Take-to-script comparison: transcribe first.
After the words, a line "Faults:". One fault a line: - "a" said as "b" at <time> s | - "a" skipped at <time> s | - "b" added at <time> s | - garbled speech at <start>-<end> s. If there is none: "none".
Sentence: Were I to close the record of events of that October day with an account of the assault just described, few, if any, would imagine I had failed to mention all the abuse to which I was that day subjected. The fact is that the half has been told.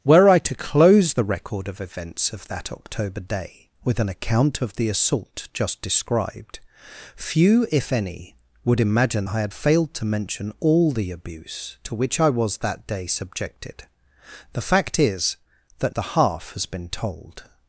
Were I to close the record of events of that October day with an account of the assault just described, few, if any, would imagine I had failed to mention all the abuse to which I was that day subjected. The fact is that the half has been told.
Faults:
none